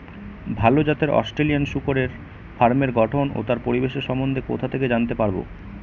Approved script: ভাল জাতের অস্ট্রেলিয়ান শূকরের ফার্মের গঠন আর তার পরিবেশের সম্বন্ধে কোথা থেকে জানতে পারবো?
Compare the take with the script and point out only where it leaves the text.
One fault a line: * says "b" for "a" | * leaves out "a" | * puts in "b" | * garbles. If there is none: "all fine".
* says "ও" for "আর"